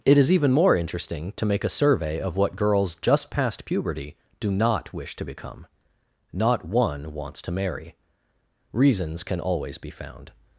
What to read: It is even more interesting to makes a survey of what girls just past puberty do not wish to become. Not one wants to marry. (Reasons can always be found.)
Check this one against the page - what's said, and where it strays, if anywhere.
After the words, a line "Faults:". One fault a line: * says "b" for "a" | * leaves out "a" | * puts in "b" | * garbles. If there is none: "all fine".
It is even more interesting to make a survey of what girls just past puberty do not wish to become. Not one wants to marry. (Reasons can always be found.)
Faults:
* says "make" for "makes"